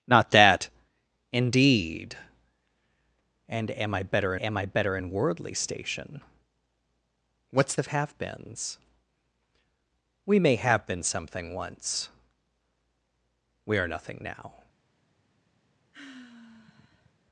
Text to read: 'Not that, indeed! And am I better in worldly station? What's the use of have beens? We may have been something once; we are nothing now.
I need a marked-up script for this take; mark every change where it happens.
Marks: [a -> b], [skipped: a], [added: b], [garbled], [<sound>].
'Not that, indeed! And am I better [added: am I better] in worldly station? What's [skipped: the use] of have beens? We may have been something once; we are nothing now. [sigh]